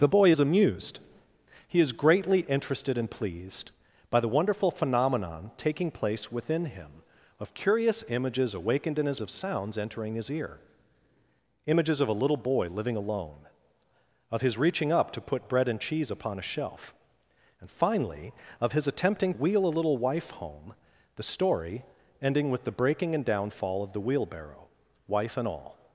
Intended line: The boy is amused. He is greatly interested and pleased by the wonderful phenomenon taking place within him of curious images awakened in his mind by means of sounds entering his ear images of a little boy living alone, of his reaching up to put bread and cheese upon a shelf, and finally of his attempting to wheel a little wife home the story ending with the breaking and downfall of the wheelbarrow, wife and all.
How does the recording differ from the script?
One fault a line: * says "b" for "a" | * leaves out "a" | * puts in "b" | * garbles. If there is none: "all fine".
* leaves out "mind by means"
* leaves out "to"